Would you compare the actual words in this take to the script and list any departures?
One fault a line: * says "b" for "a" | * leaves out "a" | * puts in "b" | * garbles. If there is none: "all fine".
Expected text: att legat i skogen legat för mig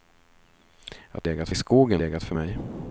all fine